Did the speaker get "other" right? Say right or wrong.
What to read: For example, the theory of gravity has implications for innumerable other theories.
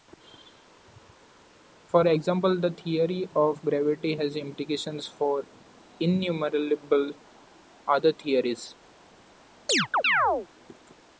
right